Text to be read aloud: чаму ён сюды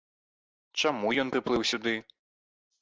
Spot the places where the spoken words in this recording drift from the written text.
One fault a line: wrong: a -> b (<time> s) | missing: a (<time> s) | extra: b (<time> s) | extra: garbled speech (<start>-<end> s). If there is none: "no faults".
extra: прыплыў (1.3 s)